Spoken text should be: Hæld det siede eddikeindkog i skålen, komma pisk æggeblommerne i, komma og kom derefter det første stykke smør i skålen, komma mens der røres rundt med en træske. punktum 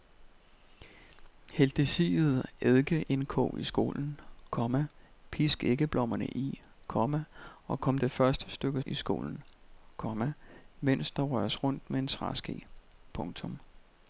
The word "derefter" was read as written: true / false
false